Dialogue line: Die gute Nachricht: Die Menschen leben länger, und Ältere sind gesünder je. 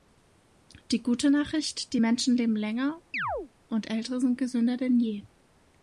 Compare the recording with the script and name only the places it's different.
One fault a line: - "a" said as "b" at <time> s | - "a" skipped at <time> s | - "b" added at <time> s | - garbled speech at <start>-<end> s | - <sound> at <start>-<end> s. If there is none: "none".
- chirp at 3.1-3.5 s
- "denn" added at 4.8 s